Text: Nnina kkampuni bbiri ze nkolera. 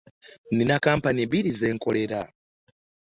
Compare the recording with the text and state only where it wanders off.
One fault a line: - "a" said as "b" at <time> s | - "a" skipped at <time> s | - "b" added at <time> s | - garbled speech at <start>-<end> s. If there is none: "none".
none